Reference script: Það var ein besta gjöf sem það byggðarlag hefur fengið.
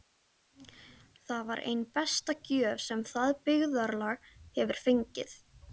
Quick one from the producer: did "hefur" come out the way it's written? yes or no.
yes